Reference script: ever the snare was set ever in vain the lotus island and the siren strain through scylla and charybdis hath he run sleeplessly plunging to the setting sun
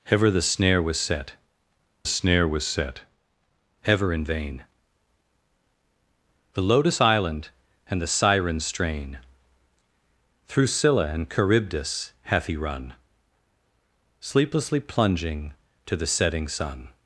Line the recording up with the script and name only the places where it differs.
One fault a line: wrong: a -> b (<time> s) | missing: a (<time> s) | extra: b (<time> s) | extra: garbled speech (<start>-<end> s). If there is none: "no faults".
extra: snare was set (2.0 s)